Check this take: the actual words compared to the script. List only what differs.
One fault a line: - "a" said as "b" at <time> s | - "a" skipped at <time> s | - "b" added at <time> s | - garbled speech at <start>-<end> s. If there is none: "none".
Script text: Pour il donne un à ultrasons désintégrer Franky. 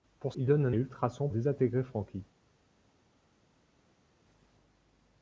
none